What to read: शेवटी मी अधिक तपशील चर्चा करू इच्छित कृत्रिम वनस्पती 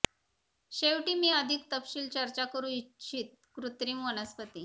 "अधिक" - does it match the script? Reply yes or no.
yes